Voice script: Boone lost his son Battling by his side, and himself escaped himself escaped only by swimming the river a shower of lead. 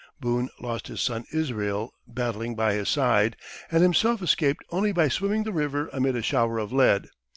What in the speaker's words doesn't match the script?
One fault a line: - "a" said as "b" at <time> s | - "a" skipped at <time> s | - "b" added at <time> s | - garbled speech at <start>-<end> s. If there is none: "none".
- "Israel" added at 1.3 s
- "himself escaped" skipped at 4.6 s
- "amid" added at 5.9 s